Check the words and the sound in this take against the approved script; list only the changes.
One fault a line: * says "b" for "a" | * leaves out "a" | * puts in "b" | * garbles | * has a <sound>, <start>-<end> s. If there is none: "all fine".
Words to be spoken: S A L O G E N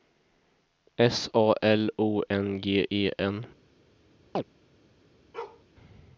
* puts in "N"
* has a chirp, 4.3-4.4 s
* has a bark, 5.3-5.6 s